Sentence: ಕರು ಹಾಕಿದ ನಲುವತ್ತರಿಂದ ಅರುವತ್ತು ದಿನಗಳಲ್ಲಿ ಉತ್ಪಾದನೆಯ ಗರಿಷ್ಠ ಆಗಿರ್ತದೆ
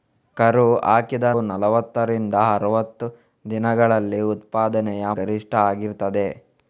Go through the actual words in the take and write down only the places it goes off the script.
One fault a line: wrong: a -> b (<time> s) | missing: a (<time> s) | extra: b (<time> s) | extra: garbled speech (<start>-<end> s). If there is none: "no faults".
no faults